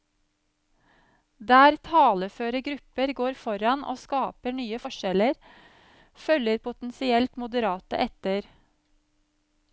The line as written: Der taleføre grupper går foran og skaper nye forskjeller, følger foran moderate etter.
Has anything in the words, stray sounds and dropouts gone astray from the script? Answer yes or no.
yes